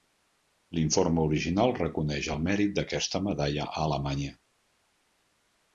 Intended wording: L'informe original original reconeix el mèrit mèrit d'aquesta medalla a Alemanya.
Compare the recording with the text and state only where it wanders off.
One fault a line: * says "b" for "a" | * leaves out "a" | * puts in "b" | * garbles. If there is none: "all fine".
* leaves out "original"
* leaves out "mèrit"